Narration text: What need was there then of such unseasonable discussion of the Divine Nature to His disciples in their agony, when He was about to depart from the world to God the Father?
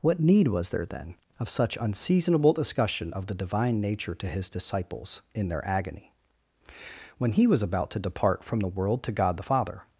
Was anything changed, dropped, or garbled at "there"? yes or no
no